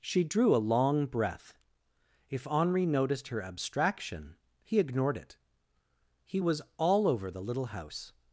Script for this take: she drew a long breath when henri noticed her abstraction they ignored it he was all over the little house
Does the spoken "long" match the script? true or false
true